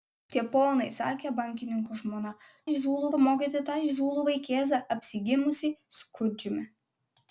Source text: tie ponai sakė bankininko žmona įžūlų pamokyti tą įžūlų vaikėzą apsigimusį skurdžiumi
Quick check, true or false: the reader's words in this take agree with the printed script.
true